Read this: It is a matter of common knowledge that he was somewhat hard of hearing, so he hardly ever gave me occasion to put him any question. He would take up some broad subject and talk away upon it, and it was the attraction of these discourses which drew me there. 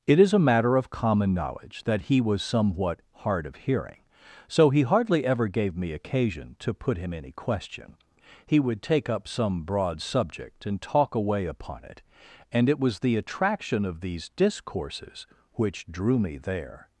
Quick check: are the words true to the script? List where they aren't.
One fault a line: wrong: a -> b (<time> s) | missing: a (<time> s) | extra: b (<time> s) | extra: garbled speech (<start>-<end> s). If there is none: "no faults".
no faults